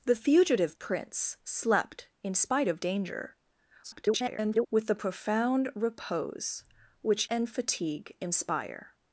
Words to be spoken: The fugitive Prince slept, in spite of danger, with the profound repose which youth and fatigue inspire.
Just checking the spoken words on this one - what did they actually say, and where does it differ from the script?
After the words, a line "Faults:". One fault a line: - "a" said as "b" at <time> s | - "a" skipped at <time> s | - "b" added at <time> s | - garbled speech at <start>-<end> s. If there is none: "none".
The fugitive Prince slept, in spite of danger, [garbled] with the profound repose which and fatigue inspire.
Faults:
- garbled speech at 3.8-4.7 s
- "youth" skipped at 7.3 s